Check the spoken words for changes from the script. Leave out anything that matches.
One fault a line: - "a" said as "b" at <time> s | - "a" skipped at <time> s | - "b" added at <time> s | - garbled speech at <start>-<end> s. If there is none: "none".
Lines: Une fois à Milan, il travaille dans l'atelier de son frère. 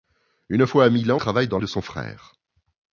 - "il" skipped at 1.2 s
- "l'atelier" skipped at 1.6 s